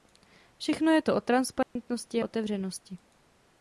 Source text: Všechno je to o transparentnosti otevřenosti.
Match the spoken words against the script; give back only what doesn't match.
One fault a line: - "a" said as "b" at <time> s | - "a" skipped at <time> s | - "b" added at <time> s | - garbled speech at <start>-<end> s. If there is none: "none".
none